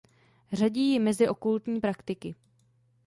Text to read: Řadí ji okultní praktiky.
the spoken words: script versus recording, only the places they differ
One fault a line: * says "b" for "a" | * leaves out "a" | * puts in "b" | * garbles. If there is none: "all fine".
* puts in "mezi"